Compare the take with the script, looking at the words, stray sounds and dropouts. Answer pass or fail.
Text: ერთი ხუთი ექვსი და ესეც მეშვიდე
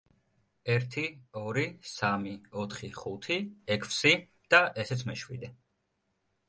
fail